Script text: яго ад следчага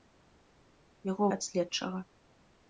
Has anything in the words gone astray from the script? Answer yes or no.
no